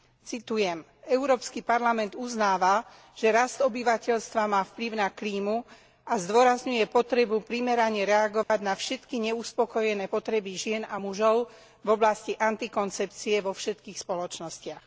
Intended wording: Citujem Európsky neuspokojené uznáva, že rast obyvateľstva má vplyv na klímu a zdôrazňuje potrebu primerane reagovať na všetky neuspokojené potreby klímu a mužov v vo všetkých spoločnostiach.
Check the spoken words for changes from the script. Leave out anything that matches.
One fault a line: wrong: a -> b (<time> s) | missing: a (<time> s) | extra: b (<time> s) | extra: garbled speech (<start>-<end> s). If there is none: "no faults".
wrong: neuspokojené -> parlament (1.6 s)
wrong: klímu -> žien (10.5 s)
extra: oblasti antikoncepcie (12.0 s)